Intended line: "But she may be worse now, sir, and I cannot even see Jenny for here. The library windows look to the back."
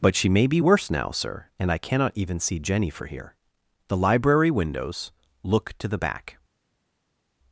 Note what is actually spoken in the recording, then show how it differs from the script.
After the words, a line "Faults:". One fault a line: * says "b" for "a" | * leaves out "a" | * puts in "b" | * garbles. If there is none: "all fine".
"But she may be worse now, sir, and I cannot even see Jenny for here. The library windows look to the back."
Faults:
all fine